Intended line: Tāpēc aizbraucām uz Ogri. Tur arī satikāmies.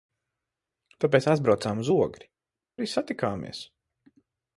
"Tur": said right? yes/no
no